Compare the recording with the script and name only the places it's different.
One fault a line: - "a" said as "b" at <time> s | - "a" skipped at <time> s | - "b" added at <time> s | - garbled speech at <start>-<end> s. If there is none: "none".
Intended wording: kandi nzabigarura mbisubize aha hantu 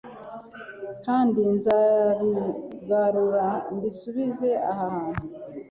none